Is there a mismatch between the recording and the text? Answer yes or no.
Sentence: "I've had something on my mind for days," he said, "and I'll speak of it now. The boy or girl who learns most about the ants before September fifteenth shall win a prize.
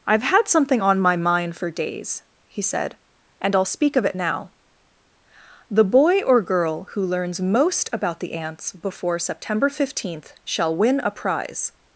no